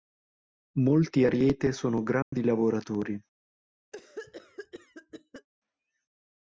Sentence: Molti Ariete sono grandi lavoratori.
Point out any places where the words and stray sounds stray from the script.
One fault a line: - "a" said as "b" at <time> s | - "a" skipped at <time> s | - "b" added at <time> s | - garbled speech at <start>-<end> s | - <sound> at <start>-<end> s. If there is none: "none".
- dropout at 2.2-2.3 s
- cough at 3.9-5.5 s